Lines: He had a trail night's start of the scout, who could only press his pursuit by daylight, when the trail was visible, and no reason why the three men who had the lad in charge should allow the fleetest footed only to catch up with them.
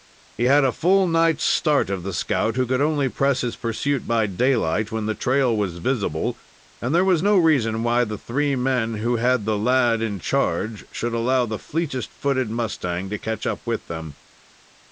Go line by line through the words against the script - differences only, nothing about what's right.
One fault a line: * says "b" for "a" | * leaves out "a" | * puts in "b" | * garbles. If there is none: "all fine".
* says "full" for "trail"
* puts in "there was"
* says "mustang" for "only"